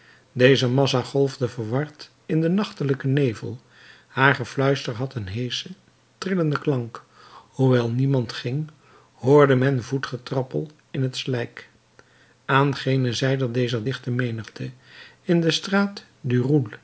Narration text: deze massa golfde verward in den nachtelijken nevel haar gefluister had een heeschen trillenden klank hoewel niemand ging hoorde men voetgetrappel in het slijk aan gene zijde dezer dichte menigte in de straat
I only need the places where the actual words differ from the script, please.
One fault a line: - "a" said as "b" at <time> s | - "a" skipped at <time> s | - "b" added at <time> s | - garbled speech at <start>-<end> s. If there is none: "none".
none